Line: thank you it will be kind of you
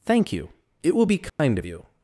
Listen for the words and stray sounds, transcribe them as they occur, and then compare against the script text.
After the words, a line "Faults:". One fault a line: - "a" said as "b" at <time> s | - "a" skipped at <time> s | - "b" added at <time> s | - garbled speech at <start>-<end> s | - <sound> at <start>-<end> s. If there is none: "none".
thank you it will be kind of you
Faults:
- dropout at 1.3-1.4 s